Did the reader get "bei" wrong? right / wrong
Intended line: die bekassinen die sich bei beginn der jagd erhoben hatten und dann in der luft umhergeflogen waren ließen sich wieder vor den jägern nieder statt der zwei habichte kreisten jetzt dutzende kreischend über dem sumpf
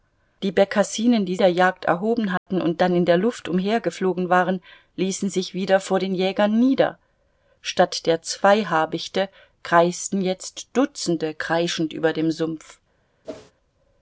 wrong